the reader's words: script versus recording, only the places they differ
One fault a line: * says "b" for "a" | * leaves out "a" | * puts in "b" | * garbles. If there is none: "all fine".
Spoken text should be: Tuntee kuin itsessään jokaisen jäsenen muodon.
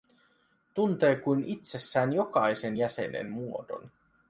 all fine